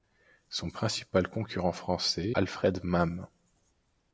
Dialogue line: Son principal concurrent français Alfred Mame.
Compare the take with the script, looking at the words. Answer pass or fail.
pass